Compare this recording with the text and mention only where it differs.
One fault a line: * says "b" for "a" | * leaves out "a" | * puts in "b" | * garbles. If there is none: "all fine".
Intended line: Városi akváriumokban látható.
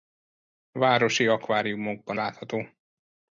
all fine